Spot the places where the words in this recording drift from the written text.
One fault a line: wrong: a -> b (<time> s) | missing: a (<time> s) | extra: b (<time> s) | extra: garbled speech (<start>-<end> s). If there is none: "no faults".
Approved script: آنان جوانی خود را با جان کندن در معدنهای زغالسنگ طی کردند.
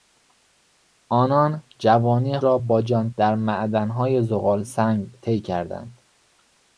missing: خود (2.4 s)
missing: کندن (3.1 s)